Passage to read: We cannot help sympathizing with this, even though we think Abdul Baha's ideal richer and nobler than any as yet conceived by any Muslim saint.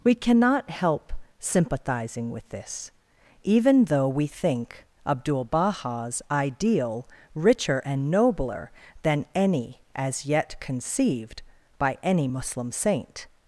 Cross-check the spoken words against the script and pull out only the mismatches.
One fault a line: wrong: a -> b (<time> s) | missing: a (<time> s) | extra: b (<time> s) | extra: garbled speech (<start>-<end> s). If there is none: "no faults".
no faults